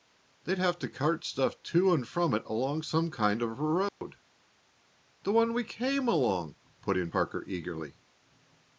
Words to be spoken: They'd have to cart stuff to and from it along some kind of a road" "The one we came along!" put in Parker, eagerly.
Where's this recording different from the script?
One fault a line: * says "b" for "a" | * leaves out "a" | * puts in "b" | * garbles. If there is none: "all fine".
all fine